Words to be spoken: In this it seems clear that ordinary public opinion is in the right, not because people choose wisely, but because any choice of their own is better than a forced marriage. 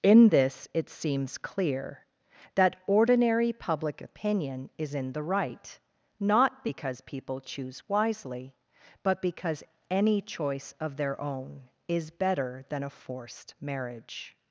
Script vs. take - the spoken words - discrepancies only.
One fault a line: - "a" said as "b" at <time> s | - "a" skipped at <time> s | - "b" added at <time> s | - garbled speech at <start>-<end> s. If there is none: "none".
none